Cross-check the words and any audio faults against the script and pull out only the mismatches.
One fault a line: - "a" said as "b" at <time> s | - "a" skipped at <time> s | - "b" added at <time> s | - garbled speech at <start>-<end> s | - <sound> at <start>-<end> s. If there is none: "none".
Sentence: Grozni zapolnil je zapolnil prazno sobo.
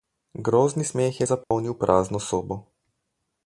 - "zapolnil" said as "smeh" at 0.8 s
- dropout at 1.4-1.5 s